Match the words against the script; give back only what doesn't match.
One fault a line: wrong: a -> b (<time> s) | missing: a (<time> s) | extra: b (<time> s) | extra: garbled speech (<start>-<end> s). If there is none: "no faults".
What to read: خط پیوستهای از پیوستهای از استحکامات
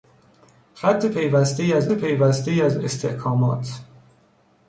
no faults